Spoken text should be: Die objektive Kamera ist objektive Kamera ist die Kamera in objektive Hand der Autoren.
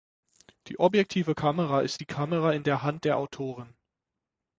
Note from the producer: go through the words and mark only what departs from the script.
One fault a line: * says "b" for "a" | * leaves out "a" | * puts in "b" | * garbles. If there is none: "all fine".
* leaves out "objektive Kamera ist"
* says "der" for "objektive"